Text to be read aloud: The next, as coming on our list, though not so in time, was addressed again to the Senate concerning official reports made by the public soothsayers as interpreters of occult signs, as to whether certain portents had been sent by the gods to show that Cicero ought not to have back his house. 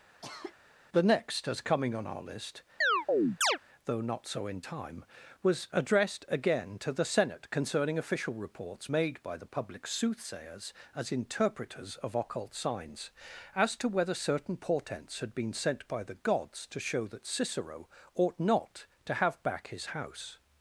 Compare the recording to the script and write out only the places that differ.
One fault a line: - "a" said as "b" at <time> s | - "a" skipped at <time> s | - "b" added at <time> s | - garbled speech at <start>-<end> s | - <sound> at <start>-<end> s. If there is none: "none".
- cough at 0.2-0.6 s
- chirp at 2.8-3.6 s